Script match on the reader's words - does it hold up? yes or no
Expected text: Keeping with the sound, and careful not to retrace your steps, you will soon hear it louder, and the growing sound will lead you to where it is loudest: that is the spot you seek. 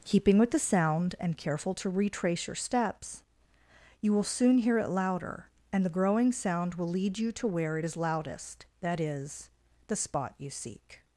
no